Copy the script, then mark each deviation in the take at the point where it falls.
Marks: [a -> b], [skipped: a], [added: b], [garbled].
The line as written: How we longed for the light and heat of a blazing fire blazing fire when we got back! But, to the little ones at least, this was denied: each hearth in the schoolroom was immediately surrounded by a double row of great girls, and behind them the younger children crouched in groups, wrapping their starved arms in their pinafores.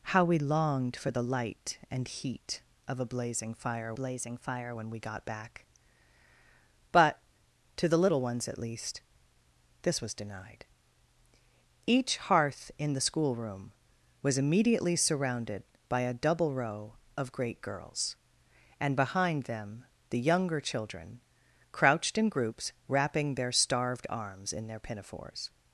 How we longed for the light and heat of a blazing fire blazing fire when we got back! But, to the little ones at least, this was denied: each hearth in the schoolroom was immediately surrounded by a double row of great girls, and behind them the younger children crouched in groups, wrapping their starved arms in their pinafores.